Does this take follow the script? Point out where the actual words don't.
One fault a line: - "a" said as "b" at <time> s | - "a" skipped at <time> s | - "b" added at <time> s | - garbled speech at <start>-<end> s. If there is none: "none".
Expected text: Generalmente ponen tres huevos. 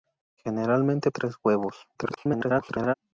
- "ponen" skipped at 1.1 s
- garbled speech at 2.0-2.9 s